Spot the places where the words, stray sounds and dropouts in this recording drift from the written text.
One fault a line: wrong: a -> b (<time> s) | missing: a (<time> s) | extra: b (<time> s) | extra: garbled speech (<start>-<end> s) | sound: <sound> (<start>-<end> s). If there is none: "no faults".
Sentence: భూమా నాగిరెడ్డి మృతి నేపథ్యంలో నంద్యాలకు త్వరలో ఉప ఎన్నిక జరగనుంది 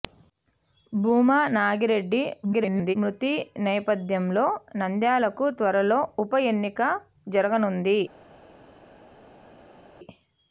extra: garbled speech (2.4-3.0 s)